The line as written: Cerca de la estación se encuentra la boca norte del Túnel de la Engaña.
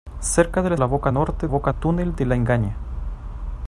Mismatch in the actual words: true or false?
true